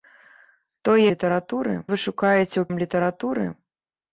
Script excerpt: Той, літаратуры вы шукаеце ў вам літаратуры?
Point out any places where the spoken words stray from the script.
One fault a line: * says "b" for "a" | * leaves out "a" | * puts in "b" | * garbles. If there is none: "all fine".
all fine